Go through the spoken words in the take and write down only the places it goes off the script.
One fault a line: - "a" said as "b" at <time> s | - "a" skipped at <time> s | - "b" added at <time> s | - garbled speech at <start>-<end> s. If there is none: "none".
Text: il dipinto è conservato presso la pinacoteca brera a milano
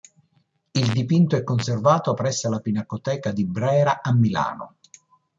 - "di" added at 3.3 s